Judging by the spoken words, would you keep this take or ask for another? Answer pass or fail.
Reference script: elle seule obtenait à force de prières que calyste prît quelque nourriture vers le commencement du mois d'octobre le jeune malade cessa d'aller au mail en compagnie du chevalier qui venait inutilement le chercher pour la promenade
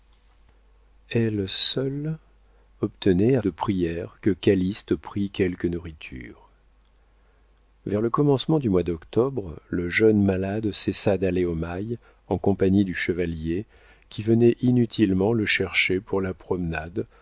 fail